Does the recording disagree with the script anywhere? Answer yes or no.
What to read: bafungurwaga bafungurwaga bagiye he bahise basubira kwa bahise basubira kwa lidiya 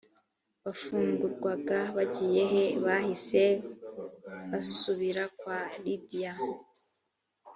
yes